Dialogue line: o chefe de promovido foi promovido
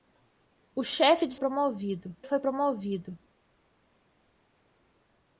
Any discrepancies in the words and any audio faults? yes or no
no